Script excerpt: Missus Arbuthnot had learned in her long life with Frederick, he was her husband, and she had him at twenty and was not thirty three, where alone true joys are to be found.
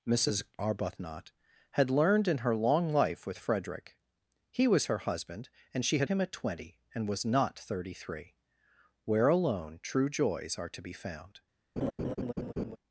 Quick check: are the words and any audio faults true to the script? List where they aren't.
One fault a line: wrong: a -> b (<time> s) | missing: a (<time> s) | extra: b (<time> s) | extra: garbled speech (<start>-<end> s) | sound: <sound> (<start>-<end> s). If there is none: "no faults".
sound: laugh (11.8-12.8 s)